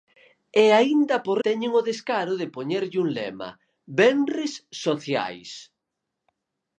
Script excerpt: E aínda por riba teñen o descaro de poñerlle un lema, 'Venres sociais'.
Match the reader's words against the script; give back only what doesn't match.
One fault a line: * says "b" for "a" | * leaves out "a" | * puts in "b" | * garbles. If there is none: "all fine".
* leaves out "riba"